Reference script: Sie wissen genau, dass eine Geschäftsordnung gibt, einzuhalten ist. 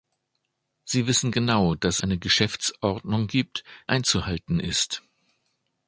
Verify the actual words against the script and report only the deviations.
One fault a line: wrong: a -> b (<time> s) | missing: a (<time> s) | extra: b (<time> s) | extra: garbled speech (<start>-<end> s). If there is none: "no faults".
no faults